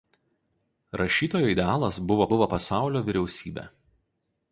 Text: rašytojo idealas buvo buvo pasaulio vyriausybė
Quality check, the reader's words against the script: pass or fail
pass